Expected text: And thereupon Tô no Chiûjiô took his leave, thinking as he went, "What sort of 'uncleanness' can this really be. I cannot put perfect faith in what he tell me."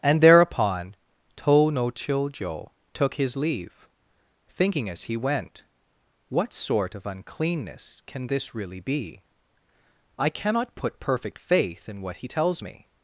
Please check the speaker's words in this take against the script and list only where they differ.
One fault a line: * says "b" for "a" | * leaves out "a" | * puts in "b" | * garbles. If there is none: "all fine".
* says "tells" for "tell"